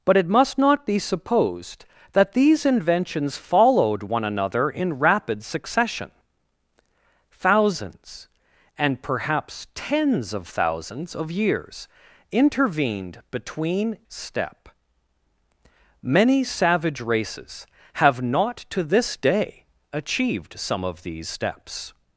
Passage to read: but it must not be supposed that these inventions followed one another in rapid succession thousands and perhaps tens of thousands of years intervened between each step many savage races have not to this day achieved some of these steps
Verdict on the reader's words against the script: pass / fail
fail